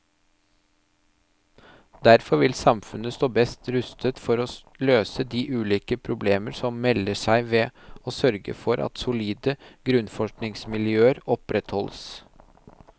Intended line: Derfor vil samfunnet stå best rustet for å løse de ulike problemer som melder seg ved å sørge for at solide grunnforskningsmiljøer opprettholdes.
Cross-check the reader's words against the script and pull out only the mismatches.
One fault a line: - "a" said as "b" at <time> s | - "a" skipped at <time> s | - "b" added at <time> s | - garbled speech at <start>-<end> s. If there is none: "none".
none